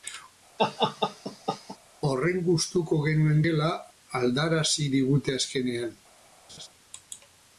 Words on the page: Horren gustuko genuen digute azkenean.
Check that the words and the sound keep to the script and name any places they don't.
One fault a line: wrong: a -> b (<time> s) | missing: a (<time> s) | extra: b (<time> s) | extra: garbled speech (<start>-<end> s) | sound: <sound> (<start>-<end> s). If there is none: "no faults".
sound: laugh (0.6-1.8 s)
extra: gela aldarazi (3.5 s)
sound: laugh (6.5-6.7 s)